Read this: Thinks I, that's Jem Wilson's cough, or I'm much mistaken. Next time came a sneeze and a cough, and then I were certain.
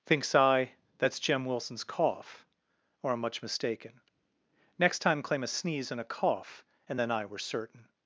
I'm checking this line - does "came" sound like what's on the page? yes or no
no